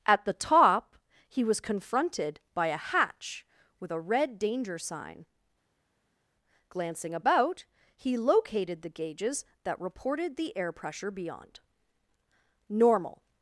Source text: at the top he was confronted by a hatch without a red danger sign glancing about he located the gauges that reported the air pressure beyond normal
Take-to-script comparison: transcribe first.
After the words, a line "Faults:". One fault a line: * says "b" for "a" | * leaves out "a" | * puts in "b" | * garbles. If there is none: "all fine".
at the top he was confronted by a hatch with a red danger sign glancing about he located the gauges that reported the air pressure beyond normal
Faults:
* says "with" for "without"